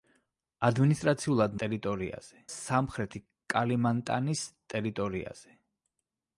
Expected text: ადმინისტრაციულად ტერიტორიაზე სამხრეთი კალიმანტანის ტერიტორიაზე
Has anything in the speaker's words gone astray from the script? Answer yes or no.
no